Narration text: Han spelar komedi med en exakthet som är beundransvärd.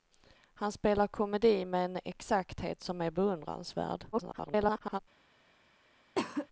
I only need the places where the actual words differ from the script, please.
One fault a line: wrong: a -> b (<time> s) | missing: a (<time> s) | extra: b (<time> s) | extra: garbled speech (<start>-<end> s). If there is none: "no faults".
extra: garbled speech (4.1-5.0 s)